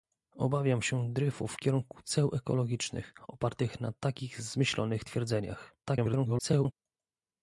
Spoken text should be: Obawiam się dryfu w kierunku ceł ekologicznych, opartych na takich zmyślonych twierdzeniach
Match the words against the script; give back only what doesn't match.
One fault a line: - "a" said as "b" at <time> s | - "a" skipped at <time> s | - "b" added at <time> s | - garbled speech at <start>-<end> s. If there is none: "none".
- garbled speech at 5.8-6.7 s